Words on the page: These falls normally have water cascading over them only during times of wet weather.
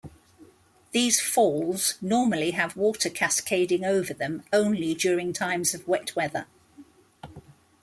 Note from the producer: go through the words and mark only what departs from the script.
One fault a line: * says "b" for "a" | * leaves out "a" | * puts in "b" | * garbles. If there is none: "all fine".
all fine